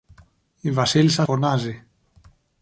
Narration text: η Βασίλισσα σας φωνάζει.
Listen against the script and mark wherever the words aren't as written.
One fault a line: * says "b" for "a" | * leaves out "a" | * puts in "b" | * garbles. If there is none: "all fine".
* leaves out "σας"